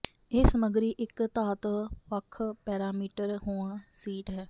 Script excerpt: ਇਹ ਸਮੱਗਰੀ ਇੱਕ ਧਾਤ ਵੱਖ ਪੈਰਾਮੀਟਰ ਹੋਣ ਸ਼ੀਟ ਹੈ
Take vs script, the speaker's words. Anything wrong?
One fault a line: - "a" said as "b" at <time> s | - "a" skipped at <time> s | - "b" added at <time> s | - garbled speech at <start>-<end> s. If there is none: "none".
none